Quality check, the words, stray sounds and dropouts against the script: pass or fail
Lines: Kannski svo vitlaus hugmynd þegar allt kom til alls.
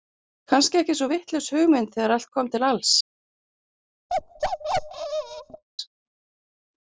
fail